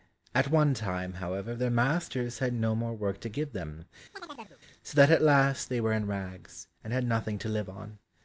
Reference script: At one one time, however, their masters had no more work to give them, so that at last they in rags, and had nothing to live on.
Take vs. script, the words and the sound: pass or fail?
fail